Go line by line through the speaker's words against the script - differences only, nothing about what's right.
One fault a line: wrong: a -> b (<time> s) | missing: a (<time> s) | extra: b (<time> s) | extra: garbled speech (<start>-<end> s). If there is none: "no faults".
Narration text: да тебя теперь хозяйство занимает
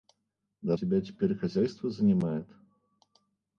no faults